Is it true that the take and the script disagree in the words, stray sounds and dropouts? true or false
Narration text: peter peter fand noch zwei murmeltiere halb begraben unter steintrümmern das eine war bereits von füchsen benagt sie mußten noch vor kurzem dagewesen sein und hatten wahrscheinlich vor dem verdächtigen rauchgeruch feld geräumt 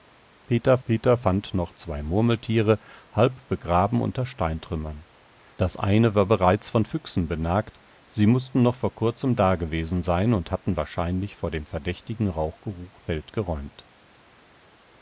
false